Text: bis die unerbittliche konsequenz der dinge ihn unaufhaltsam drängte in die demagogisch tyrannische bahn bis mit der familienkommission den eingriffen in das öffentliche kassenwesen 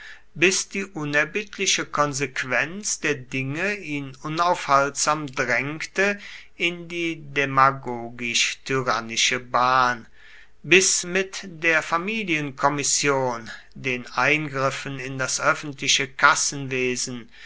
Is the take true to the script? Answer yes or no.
yes